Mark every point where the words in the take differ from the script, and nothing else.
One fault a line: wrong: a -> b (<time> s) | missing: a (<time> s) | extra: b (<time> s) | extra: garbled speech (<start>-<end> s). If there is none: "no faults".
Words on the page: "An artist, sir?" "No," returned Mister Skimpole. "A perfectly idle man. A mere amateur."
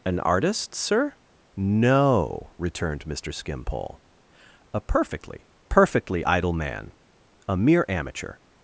extra: perfectly (5.7 s)